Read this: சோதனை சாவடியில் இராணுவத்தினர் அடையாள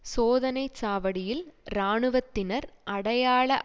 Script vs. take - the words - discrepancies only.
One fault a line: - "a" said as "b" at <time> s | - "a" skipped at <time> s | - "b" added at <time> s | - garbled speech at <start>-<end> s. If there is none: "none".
none